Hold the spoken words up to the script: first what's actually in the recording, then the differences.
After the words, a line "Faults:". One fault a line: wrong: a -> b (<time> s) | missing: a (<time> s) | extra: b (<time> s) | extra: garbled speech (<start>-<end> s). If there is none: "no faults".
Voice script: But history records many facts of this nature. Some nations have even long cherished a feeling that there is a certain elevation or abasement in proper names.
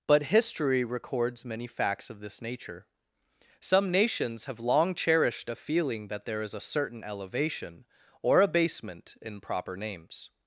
But history records many facts of this nature. Some nations have long cherished a feeling that there is a certain elevation or abasement in proper names.
Faults:
missing: even (4.6 s)